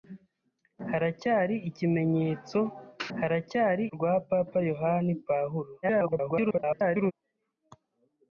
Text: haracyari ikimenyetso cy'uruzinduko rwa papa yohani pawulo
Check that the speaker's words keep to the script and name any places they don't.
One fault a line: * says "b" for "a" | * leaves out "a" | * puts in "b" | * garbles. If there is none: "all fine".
* says "haracyari" for "cy'uruzinduko"
* garbles